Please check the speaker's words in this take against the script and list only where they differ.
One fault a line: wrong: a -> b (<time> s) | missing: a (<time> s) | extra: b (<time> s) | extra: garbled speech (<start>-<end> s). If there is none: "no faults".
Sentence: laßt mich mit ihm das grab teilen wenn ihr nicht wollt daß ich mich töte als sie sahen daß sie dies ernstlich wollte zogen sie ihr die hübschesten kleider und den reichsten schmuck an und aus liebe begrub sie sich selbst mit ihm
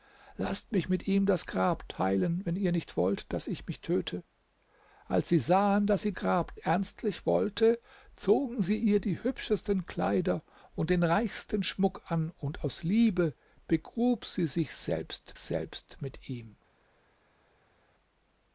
wrong: dies -> grab (6.1 s)
extra: selbst (15.4 s)